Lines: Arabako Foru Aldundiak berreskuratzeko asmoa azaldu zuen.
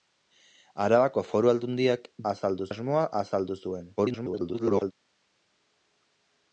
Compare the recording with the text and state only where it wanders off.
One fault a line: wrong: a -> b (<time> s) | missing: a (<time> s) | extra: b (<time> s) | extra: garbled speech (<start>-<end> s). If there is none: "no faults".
wrong: berreskuratzeko -> azaldu (2.3 s)
extra: garbled speech (4.0-4.9 s)